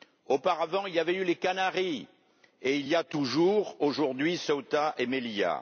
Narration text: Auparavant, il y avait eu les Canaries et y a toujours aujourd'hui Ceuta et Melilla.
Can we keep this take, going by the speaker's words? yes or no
no